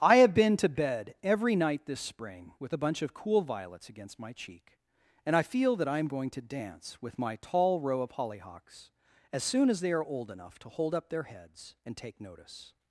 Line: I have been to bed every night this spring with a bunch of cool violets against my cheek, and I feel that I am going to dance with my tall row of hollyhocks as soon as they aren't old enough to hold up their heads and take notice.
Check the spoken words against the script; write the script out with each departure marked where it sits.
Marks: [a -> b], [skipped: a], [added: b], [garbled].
I have been to bed every night this spring with a bunch of cool violets against my cheek, and I feel that I am going to dance with my tall row of hollyhocks as soon as they [aren't -> are] old enough to hold up their heads and take notice.